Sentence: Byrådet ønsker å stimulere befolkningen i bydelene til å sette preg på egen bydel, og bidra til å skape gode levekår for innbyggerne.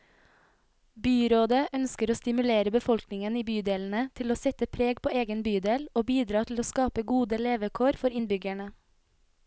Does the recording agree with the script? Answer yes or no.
yes